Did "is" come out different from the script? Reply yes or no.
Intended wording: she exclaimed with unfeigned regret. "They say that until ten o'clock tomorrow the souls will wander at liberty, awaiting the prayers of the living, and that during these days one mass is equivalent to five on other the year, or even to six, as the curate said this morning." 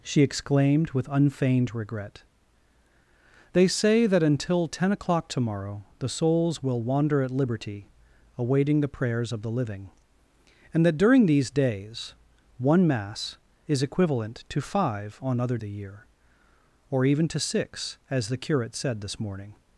no